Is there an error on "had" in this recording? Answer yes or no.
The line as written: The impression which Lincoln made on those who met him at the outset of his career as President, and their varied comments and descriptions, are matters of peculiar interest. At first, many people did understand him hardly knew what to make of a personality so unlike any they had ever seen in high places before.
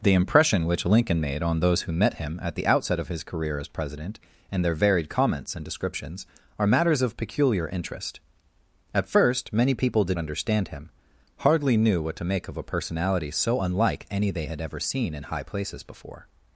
no